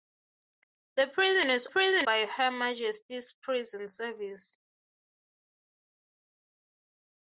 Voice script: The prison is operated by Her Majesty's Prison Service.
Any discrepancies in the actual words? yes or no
yes